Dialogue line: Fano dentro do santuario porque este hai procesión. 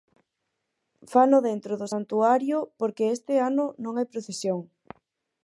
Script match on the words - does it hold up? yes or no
no